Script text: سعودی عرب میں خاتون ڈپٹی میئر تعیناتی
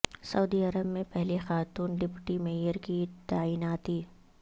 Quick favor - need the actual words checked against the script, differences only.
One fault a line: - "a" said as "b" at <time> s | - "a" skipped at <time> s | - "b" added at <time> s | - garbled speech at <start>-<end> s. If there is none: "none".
- "پہلی" added at 1.1 s
- "کی" added at 2.8 s